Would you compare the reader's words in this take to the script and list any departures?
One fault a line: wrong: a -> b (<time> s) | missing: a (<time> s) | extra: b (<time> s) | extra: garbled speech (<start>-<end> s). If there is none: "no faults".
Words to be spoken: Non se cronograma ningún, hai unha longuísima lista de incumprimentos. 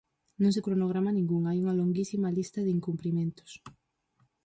no faults